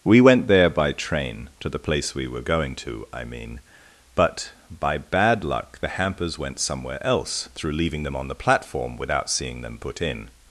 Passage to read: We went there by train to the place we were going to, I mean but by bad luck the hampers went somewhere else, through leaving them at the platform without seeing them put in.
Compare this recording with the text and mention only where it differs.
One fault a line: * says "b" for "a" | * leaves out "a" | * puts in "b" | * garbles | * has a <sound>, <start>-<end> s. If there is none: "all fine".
* says "on" for "at"